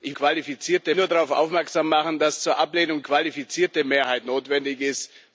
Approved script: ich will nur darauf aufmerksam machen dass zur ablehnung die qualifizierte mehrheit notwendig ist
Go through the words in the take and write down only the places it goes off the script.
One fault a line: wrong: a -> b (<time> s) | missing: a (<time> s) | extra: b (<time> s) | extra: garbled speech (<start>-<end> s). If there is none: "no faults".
wrong: will -> qualifizierte (0.1 s)
missing: die (3.0 s)